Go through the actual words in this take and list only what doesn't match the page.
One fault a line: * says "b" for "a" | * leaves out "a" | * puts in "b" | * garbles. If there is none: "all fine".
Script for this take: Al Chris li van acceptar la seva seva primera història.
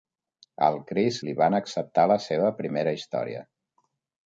* leaves out "seva"